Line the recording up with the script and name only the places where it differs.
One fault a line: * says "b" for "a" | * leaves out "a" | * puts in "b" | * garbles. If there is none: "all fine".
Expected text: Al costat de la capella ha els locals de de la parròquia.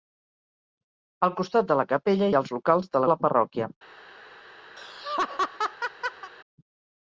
all fine